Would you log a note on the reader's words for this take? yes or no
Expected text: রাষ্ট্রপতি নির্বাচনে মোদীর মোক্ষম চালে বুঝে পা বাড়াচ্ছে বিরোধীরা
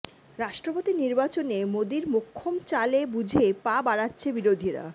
no